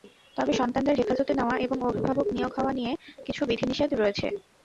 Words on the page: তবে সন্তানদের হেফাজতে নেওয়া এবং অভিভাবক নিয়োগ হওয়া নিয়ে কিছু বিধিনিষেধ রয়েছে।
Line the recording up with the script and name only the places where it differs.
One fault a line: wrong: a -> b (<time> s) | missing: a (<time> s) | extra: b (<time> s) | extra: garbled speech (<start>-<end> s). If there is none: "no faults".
no faults